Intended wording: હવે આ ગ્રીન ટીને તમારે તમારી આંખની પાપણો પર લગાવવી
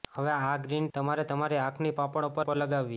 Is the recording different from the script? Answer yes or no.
yes